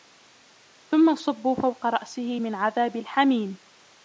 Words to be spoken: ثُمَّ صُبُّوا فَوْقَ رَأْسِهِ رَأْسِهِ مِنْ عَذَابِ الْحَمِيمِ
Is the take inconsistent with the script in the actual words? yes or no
yes